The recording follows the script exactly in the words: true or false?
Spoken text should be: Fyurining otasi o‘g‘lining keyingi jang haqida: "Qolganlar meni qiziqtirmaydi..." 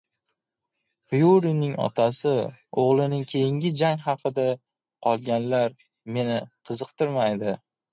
true